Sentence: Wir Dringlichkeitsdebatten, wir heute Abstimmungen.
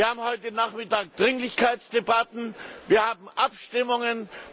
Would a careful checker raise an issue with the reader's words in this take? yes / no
yes